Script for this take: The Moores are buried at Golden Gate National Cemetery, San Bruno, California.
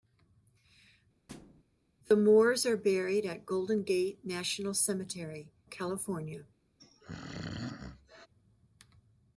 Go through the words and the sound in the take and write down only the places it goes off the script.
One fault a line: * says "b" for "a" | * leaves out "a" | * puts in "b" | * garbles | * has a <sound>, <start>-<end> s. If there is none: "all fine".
* has a thud, 1.3-1.6 s
* leaves out "San Bruno"
* has a throat clearing, 6.8-8.3 s